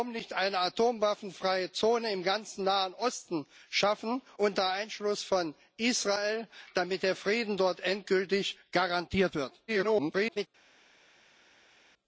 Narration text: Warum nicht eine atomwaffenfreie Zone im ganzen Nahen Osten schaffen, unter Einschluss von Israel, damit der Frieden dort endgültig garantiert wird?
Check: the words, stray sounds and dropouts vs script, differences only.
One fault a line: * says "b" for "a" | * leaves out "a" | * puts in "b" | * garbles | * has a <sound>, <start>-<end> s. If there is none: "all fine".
* garbles